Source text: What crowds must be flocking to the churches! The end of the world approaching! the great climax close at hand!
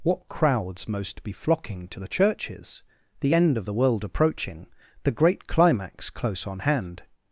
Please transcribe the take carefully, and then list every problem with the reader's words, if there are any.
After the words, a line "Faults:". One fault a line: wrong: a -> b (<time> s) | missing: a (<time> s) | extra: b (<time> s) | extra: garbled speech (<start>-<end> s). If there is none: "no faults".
What crowds most be flocking to the churches! The end of the world approaching! the great climax close on hand!
Faults:
wrong: must -> most (0.9 s)
wrong: at -> on (6.5 s)